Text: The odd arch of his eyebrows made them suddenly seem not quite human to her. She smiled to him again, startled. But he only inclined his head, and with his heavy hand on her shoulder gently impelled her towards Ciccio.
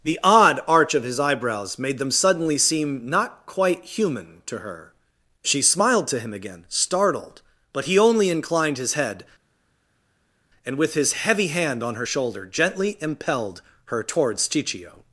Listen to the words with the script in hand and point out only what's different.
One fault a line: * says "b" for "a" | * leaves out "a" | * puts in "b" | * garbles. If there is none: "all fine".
all fine